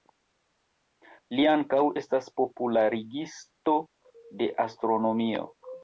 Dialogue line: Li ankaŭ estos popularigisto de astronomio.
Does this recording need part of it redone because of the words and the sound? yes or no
yes